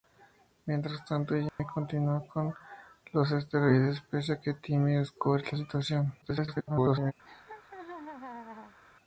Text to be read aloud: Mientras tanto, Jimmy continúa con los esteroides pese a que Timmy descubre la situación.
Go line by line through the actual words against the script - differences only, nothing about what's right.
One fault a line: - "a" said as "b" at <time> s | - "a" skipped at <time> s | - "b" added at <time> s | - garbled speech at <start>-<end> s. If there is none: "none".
- garbled speech at 6.2-7.1 s